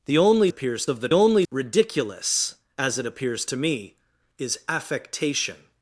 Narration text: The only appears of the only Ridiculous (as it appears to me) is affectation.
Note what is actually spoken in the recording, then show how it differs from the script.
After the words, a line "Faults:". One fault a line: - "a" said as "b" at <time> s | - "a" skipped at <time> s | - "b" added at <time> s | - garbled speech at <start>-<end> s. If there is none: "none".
The only appears of the only Ridiculous (as it appears to me) is affectation.
Faults:
none